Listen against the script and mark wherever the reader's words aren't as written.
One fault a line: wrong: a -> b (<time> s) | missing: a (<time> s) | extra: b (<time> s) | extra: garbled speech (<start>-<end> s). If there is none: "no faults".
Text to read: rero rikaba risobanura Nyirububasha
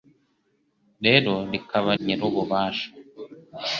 missing: risobanura (1.9 s)